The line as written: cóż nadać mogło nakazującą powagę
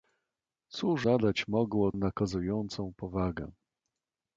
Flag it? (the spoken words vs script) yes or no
no